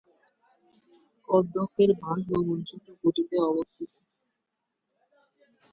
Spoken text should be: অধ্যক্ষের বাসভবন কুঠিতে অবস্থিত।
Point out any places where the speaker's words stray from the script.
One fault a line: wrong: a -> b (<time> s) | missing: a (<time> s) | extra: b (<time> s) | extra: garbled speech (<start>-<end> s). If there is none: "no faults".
extra: ছোট (2.7 s)